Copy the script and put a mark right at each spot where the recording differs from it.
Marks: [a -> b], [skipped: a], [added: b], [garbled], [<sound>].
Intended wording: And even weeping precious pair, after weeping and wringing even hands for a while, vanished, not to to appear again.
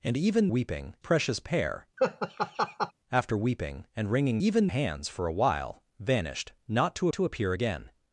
And even weeping precious pair, [laugh] after weeping and wringing even hands for a while, vanished, not to to appear again.